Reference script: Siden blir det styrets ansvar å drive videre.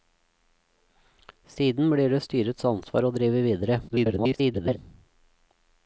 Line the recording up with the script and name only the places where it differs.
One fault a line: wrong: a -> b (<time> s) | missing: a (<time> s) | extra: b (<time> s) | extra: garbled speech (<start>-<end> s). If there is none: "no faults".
extra: garbled speech (3.9-4.8 s)